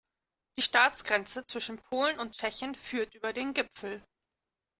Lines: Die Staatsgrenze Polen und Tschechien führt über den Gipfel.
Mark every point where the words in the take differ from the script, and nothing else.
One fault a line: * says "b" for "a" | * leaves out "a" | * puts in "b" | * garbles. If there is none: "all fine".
* puts in "zwischen"